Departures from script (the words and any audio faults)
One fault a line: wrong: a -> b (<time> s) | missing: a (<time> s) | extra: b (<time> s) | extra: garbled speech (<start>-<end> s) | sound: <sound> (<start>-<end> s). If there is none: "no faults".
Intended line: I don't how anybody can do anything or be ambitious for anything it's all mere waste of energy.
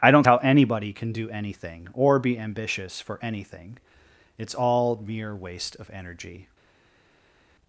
no faults